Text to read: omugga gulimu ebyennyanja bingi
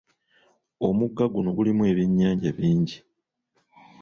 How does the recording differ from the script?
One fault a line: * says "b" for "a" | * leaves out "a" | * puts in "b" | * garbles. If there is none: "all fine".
* puts in "guno"